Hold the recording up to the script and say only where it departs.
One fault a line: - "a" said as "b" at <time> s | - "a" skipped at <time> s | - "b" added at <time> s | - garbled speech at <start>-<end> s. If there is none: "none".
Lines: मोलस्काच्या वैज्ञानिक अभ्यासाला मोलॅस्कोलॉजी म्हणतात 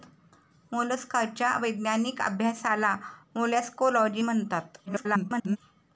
- garbled speech at 4.9-5.6 s